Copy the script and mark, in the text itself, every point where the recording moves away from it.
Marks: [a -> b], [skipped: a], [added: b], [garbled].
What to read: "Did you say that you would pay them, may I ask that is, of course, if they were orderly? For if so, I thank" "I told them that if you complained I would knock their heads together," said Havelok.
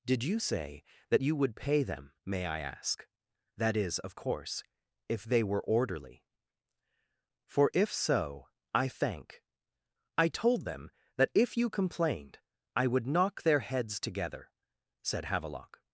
"Did you say that you would pay them, may I ask that is, of course, if they were orderly? For if so, I thank" "I told them that if you complained I would knock their heads together," said Havelok.